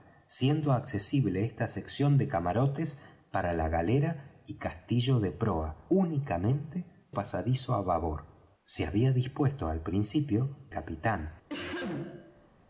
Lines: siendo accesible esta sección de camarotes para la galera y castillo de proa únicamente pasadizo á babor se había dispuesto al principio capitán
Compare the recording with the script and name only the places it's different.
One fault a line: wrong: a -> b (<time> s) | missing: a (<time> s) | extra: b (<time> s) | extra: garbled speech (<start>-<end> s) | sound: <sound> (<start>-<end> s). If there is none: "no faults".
sound: cough (11.5-12.5 s)